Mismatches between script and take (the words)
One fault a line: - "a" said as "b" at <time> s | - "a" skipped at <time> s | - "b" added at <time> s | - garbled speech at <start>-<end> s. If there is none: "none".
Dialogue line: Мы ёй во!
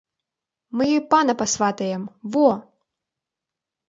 - "пана пасватаем" added at 1.1 s